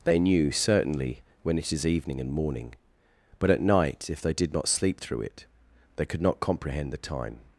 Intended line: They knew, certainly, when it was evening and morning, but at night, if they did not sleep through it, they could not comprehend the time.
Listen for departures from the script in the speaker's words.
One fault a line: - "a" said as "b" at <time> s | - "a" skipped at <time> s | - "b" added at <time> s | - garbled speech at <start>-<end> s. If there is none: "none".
- "was" said as "is" at 1.7 s